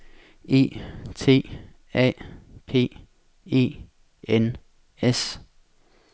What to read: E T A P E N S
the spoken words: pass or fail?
pass